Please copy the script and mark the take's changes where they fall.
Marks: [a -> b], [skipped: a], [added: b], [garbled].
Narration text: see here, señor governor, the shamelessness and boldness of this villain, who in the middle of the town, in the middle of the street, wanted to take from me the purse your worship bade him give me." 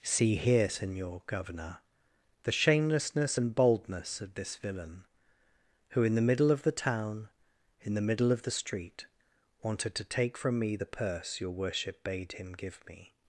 see here, señor governor, the shamelessness and boldness of this villain, who in the middle of the town, in the middle of the street, wanted to take from me the purse your worship bade him give me."